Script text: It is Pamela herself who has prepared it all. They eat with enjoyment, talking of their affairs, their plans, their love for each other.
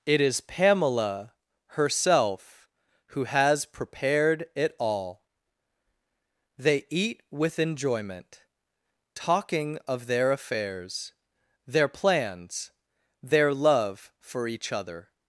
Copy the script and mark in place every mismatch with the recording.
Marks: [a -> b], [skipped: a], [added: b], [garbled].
It is Pamela herself who has prepared it all. They eat with enjoyment, talking of their affairs, their plans, their love for each other.